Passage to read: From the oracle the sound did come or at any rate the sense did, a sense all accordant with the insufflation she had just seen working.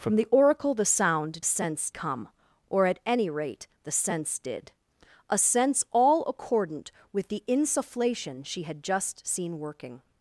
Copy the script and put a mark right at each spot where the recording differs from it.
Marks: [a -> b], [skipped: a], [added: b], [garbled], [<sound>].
From the oracle the sound [did -> sense] come or at any rate the sense did, a sense all accordant with the insufflation she had just seen working.